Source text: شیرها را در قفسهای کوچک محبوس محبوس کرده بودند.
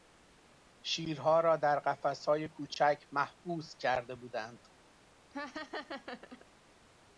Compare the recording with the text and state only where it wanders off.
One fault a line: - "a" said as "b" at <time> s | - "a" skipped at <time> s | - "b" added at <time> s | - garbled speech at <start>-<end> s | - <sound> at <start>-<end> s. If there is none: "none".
- "محبوس" skipped at 3.8 s
- laugh at 5.3-6.5 s